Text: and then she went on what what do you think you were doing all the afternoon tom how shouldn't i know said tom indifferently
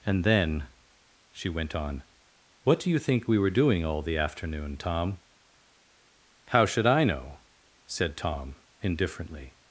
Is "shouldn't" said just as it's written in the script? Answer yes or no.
no